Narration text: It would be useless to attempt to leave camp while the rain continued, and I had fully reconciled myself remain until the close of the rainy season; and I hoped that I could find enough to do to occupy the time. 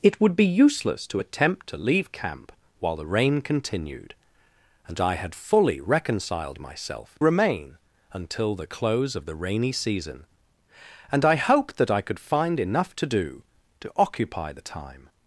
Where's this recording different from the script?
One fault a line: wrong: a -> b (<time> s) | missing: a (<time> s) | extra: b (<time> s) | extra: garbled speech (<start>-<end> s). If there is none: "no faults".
no faults